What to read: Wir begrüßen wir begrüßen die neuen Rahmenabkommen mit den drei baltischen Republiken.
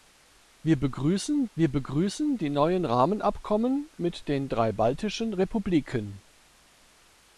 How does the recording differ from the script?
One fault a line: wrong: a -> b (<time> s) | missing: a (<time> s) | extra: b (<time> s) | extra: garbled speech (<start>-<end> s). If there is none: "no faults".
no faults